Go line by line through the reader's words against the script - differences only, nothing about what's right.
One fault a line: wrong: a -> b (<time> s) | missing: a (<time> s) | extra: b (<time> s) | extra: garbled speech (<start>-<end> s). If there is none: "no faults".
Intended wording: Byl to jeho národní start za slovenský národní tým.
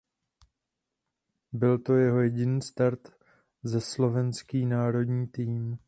wrong: národní -> jediný (2.2 s)